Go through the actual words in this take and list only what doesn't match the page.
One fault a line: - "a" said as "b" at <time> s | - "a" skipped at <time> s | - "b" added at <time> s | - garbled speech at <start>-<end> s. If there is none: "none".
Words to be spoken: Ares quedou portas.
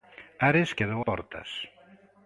none